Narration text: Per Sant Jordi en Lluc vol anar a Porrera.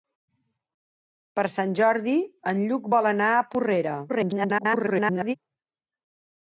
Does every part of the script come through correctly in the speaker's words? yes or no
no